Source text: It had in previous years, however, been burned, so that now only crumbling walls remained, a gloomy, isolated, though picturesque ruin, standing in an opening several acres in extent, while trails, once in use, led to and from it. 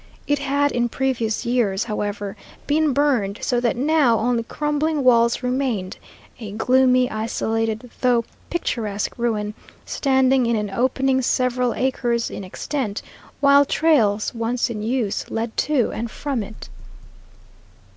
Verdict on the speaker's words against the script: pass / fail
pass